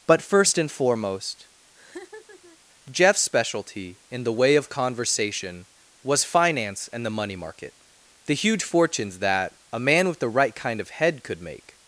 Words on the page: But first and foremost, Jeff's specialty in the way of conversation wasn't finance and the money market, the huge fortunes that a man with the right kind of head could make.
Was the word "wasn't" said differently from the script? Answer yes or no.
yes